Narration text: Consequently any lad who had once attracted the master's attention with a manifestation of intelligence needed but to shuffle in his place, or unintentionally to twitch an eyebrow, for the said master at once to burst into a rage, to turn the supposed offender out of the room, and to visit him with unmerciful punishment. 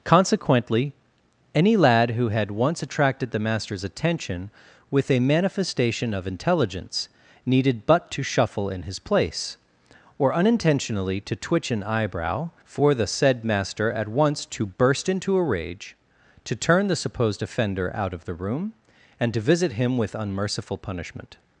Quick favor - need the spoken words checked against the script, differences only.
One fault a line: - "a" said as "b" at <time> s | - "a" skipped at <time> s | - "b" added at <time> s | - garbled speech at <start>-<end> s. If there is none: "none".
none